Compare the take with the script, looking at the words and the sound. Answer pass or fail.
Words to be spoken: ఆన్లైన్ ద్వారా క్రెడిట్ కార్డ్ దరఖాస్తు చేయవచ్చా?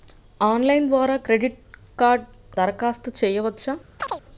fail